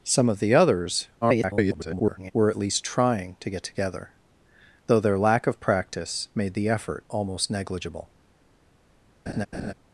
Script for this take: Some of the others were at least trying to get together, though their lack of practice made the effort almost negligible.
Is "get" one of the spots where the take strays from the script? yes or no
no